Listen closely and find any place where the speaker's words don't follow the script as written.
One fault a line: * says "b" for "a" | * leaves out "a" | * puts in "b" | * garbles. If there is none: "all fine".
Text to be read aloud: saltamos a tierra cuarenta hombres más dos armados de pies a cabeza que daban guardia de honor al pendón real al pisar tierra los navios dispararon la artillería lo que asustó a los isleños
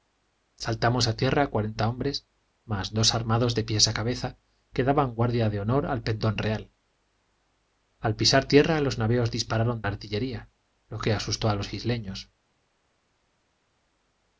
all fine